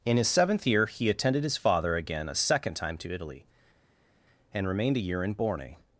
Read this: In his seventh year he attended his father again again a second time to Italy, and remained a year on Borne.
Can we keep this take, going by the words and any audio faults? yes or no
no